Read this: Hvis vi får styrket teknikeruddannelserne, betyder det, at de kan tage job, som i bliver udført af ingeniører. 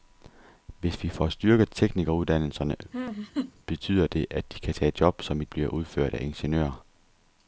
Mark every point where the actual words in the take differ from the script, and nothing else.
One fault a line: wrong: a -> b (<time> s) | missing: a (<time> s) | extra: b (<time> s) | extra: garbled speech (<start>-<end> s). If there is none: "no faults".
no faults